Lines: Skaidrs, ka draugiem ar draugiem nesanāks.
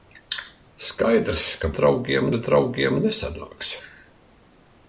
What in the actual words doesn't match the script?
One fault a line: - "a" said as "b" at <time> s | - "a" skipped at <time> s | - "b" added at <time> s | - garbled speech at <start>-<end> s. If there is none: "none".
none